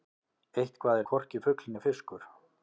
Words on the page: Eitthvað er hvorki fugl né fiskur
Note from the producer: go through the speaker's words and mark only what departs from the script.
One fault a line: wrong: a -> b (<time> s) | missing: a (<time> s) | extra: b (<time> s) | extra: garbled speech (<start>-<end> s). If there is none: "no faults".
no faults